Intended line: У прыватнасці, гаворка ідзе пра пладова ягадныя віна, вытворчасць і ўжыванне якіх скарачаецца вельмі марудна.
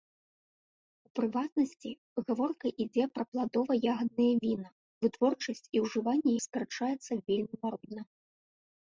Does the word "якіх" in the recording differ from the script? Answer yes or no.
yes